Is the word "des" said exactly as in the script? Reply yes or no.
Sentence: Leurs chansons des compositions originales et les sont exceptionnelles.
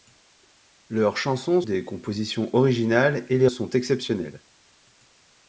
yes